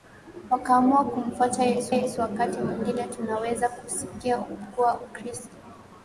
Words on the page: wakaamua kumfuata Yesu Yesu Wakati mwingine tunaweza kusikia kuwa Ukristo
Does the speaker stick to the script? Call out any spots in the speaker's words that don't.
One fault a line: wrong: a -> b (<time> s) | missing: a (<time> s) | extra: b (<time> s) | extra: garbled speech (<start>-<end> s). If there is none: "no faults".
no faults